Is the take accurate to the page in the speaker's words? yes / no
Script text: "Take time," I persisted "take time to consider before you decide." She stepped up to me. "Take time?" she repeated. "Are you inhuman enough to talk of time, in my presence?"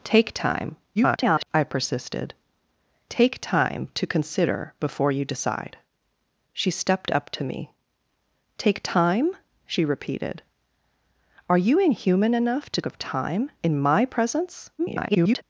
no